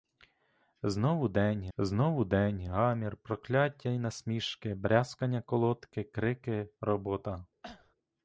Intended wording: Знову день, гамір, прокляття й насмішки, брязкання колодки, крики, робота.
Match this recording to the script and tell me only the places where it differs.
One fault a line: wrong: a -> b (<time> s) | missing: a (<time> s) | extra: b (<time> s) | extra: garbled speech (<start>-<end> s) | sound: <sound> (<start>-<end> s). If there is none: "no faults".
extra: знову день (1.8 s)
sound: cough (7.6-8.0 s)